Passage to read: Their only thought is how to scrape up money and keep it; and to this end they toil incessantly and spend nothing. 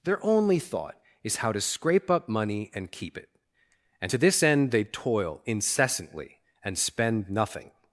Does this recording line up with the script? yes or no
yes